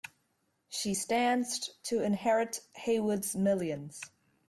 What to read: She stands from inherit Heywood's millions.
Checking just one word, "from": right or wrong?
wrong